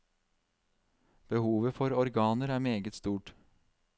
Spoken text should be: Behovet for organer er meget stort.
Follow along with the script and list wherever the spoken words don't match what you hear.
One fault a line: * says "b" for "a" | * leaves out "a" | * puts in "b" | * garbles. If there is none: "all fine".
all fine